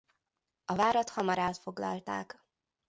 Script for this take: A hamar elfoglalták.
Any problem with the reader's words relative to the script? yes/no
yes